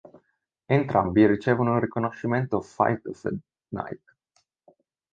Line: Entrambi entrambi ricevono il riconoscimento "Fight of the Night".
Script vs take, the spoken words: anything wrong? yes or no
yes